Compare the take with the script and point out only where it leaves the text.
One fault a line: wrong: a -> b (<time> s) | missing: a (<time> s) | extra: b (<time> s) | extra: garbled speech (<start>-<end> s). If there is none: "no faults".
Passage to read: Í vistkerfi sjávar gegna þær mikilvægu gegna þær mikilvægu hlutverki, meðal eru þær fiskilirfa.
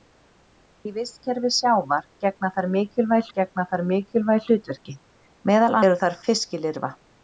no faults